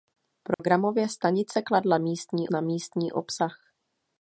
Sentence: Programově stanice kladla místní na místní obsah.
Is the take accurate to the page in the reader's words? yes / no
yes